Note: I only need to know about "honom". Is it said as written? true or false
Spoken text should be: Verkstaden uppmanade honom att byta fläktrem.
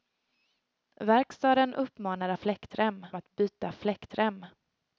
false